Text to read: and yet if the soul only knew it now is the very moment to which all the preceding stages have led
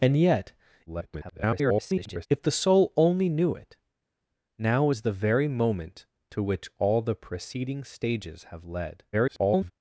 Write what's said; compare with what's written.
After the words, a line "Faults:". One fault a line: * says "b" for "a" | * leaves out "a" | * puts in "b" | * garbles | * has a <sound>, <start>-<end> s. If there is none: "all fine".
and yet [garbled] if the soul only knew it now is the very moment to which all the preceding stages have led [garbled]
Faults:
* garbles
* garbles